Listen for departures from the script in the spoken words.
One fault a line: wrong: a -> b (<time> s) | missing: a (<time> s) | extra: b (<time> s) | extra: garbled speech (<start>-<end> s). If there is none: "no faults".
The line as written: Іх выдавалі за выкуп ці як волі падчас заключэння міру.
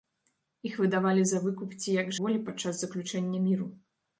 no faults